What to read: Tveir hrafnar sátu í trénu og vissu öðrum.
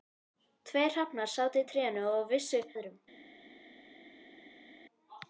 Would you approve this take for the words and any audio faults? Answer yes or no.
yes